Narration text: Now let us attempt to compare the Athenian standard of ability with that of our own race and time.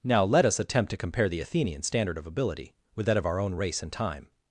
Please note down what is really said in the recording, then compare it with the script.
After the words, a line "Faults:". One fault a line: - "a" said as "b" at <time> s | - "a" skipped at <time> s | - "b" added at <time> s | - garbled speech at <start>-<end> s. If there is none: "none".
Now let us attempt to compare the Athenian standard of ability with that of our own race and time.
Faults:
none